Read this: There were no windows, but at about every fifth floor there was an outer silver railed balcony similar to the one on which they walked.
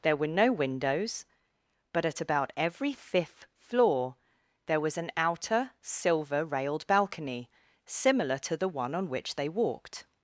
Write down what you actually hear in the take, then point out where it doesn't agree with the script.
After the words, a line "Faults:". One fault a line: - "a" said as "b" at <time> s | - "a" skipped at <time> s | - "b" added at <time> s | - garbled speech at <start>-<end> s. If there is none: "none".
There were no windows, but at about every fifth floor there was an outer silver railed balcony similar to the one on which they walked.
Faults:
none